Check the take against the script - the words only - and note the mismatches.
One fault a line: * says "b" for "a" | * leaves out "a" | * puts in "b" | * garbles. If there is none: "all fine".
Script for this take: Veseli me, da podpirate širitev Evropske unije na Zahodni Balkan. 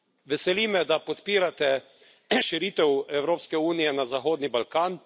all fine